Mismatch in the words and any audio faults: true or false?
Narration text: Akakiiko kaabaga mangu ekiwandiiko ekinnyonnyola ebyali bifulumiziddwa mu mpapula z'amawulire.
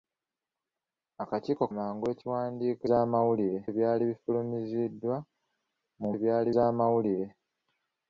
true